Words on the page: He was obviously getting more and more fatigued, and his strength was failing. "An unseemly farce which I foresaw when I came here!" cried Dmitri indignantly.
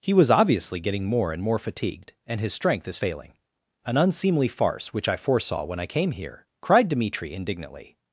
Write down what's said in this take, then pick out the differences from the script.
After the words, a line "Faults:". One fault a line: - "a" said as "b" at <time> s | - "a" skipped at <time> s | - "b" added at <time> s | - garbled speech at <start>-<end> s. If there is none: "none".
He was obviously getting more and more fatigued, and his strength is failing. "An unseemly farce which I foresaw when I came here!" cried Dmitri indignantly.
Faults:
- "was" said as "is" at 2.9 s